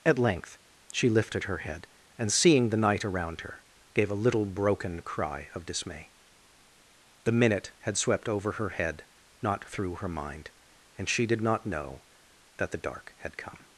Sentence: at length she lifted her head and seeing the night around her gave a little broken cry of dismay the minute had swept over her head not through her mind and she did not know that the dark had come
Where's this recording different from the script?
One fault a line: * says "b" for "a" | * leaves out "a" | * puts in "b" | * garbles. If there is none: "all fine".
all fine